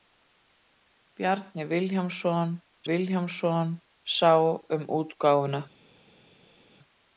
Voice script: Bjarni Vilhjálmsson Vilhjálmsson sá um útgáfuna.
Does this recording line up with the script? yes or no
yes